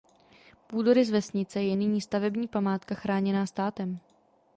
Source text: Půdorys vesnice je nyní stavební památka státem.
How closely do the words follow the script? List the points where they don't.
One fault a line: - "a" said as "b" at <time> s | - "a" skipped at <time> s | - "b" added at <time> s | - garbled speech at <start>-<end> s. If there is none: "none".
- "chráněná" added at 2.9 s